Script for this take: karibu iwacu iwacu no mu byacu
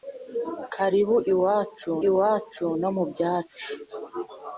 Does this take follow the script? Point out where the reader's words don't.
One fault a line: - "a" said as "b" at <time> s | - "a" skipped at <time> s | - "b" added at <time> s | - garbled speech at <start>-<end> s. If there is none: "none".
none